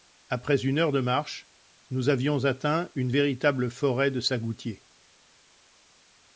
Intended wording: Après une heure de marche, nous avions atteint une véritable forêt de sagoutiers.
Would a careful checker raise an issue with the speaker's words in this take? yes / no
no